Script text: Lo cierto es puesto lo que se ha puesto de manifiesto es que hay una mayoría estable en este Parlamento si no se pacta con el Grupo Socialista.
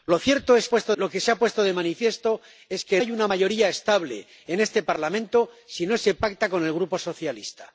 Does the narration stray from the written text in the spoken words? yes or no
no